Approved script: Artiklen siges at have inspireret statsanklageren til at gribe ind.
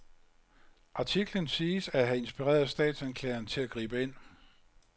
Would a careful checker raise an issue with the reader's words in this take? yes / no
no